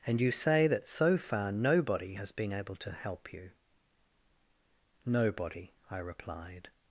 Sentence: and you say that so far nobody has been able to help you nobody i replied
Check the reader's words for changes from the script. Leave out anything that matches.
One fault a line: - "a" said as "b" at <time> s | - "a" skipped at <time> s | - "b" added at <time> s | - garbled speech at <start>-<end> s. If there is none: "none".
none